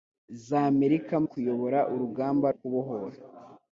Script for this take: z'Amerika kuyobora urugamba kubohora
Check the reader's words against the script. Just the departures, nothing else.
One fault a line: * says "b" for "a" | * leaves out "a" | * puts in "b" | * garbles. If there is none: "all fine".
all fine